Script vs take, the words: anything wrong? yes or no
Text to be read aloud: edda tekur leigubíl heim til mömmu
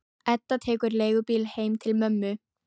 no